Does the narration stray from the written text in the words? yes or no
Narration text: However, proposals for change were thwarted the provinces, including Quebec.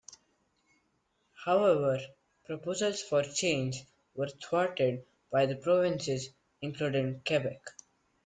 yes